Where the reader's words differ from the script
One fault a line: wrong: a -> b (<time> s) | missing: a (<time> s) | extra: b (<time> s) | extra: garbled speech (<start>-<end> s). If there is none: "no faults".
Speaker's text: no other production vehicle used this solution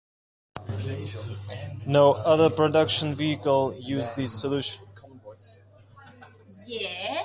no faults